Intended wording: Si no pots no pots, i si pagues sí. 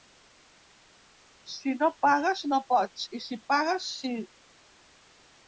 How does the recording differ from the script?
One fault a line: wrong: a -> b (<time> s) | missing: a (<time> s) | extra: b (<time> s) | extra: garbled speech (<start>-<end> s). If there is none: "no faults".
wrong: pots -> pagues (2.0 s)